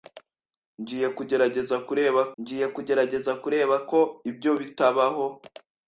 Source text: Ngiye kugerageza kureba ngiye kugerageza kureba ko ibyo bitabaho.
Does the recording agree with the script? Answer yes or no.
yes